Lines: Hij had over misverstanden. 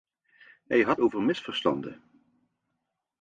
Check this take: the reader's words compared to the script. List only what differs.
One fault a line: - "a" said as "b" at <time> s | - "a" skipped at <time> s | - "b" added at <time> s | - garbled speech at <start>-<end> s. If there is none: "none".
none